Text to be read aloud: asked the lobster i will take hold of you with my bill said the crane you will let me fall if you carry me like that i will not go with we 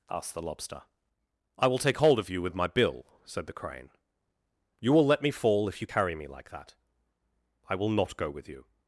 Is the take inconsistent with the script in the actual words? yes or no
yes